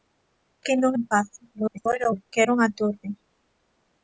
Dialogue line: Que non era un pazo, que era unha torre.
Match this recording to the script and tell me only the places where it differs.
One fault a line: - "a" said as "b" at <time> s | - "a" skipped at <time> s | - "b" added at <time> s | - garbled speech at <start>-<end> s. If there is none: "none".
- "era" skipped at 0.9 s
- garbled speech at 1.5-2.2 s